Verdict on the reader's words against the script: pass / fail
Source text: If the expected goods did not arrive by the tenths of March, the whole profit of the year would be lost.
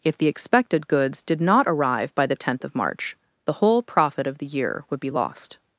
fail